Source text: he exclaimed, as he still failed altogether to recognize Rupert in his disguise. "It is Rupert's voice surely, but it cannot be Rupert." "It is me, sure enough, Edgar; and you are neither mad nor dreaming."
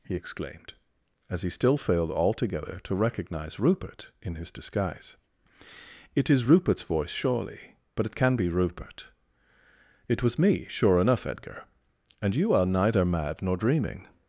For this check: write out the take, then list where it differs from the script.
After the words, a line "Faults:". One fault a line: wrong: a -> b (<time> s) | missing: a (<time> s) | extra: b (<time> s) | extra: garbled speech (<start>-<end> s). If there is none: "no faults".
he exclaimed, as he still failed altogether to recognize Rupert in his disguise. "It is Rupert's voice surely, but it can be Rupert." "It was me, sure enough, Edgar; and you are neither mad nor dreaming."
Faults:
wrong: cannot -> can (8.1 s)
wrong: is -> was (10.2 s)